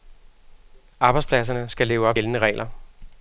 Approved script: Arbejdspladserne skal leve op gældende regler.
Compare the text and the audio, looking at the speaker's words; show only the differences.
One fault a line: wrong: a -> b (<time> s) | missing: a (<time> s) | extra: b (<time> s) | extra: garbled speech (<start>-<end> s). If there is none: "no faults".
no faults